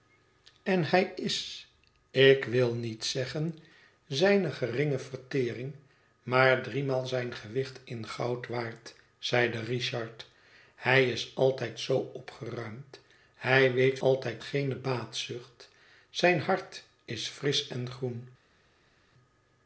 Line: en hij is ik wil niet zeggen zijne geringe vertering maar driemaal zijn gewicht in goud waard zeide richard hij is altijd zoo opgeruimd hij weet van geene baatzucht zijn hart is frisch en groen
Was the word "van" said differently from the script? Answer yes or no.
yes